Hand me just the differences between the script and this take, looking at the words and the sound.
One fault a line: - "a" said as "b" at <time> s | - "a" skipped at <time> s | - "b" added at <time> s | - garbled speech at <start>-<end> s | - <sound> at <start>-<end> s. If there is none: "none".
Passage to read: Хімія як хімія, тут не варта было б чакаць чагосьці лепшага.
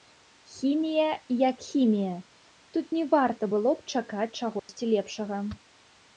- dropout at 4.6-4.7 s